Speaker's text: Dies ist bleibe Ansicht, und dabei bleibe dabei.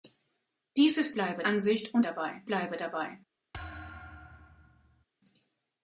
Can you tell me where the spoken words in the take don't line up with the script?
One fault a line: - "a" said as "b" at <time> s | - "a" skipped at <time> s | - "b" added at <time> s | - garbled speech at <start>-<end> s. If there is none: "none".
none